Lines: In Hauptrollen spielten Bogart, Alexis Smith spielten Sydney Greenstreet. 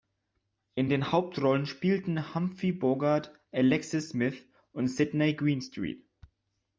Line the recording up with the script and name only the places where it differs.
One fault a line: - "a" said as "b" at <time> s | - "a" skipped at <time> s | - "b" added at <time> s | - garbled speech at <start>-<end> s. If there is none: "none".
- "den" added at 0.9 s
- "Humphrey" added at 2.3 s
- "spielten" said as "und" at 4.7 s